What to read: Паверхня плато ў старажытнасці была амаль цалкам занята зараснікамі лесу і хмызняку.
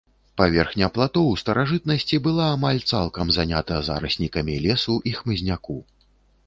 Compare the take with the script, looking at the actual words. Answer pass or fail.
pass